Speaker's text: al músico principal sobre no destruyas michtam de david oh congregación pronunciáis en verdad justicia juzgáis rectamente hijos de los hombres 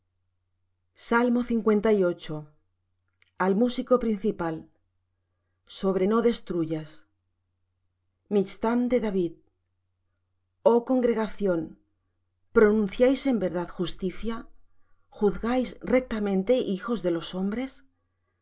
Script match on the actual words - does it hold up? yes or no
yes